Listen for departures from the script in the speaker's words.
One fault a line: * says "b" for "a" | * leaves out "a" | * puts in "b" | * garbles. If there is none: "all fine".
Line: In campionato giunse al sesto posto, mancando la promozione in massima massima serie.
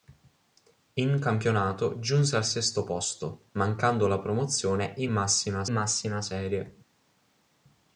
all fine